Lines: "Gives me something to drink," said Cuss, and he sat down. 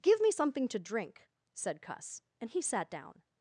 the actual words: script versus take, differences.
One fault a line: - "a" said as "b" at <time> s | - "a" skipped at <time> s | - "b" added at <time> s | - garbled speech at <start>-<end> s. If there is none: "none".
- "Gives" said as "Give" at 0.0 s